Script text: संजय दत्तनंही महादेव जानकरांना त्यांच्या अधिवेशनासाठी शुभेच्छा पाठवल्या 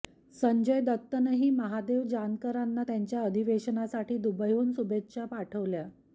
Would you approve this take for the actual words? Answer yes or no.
no